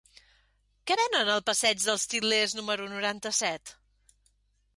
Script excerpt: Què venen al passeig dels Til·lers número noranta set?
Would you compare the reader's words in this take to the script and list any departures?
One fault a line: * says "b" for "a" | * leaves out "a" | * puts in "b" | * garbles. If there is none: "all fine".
all fine